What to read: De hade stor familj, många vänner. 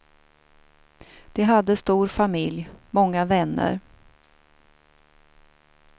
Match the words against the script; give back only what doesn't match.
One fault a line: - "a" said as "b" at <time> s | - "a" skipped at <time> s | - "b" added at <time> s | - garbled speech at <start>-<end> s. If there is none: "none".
none